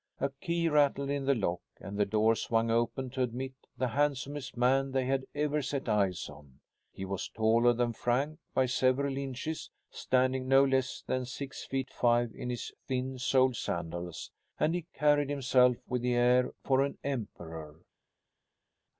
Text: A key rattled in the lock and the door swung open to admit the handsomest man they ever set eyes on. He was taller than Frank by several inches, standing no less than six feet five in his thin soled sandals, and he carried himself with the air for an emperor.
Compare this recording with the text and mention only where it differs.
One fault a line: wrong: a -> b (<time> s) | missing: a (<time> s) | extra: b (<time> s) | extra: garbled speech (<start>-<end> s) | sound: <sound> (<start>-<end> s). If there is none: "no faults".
extra: had (5.0 s)